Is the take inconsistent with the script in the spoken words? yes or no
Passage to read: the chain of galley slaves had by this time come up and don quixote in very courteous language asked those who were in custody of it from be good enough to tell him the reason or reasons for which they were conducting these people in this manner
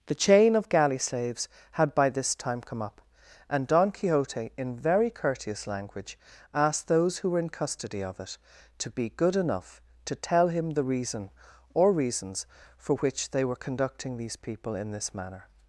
yes